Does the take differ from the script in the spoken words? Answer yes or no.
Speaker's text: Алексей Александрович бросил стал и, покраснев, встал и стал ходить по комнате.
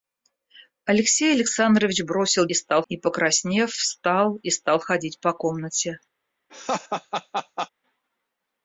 no